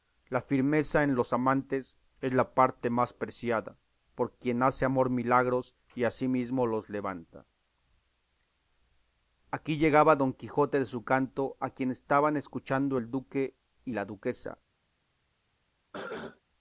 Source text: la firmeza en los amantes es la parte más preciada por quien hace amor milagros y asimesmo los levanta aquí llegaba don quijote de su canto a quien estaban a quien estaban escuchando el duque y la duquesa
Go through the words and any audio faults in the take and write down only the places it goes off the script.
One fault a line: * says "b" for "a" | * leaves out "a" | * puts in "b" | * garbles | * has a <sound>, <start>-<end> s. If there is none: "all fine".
* leaves out "a quien estaban"
* has a cough, 15.9-16.4 s